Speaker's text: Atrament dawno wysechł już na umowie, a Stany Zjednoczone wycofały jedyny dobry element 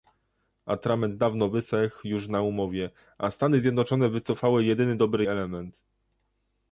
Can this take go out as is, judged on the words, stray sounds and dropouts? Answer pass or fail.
pass